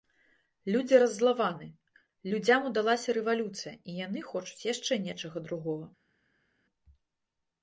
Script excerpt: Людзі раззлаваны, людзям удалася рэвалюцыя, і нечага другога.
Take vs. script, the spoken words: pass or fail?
fail